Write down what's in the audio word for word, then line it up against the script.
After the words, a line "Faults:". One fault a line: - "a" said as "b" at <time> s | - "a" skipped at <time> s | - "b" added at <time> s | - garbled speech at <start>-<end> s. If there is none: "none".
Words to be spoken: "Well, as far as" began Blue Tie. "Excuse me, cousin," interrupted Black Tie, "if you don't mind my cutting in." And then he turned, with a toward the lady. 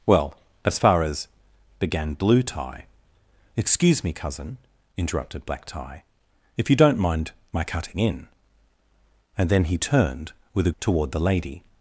"Well, as far as" began Blue Tie. "Excuse me, cousin," interrupted Black Tie, "if you don't mind my cutting in." And then he turned, with a toward the lady.
Faults:
none